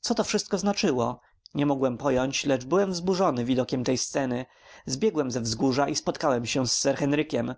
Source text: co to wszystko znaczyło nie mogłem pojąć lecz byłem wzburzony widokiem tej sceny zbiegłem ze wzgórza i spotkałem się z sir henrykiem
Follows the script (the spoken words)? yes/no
yes